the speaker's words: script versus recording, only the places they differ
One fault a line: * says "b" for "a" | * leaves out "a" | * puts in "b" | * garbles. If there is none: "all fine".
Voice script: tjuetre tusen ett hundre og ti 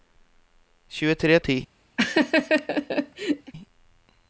* leaves out "tusen ett hundre"